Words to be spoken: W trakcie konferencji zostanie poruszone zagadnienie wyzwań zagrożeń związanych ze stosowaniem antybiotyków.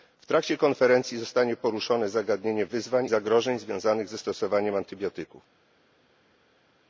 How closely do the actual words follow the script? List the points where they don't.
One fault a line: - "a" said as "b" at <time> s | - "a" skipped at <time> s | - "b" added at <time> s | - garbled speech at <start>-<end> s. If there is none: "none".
none